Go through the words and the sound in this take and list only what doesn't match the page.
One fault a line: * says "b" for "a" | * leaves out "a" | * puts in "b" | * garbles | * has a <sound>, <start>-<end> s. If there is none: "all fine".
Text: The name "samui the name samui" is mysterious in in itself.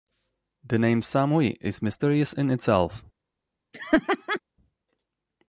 * leaves out "the name samui"
* leaves out "in"
* has a laugh, 3.7-4.4 s